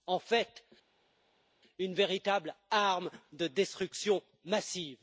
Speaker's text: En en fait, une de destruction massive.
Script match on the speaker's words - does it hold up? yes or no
no